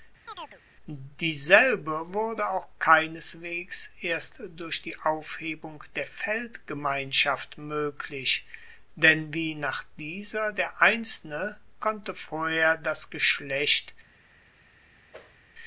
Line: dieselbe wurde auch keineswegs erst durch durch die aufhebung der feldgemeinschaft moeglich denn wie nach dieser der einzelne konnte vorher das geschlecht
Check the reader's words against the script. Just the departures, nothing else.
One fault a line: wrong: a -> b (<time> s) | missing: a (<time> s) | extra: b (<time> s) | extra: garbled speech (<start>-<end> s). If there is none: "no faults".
missing: durch (4.8 s)